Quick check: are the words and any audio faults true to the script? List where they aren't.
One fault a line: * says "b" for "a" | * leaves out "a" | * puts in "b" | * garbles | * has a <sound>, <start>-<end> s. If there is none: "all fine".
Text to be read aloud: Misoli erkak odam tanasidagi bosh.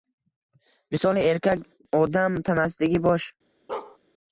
* has a bark, 3.7-4.0 s